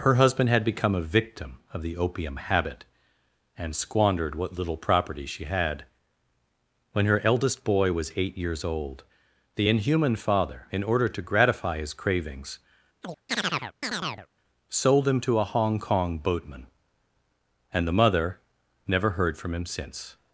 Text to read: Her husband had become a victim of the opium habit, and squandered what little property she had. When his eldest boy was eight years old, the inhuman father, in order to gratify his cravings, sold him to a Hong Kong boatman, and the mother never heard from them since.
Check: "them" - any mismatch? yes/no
yes